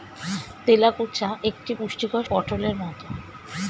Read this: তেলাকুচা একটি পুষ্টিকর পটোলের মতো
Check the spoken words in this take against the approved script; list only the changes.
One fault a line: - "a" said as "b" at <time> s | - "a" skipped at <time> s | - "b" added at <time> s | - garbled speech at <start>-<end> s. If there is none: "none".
none